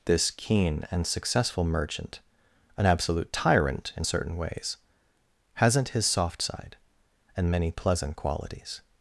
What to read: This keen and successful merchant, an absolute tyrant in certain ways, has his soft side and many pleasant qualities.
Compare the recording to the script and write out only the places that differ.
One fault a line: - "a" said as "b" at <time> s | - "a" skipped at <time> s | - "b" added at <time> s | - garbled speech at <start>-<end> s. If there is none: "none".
- "has" said as "hasn't" at 5.5 s